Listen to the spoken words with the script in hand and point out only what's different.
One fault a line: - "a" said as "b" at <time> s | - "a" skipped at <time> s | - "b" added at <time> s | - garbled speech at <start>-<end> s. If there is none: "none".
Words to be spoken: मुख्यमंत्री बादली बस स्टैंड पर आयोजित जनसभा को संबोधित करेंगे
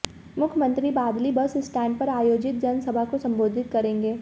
none